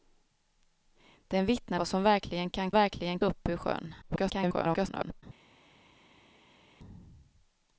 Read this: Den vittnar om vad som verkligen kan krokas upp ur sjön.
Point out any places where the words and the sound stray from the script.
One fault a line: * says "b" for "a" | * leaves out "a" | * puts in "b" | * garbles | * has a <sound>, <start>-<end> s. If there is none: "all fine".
* leaves out "om"
* says "verkligen" for "krokas"
* garbles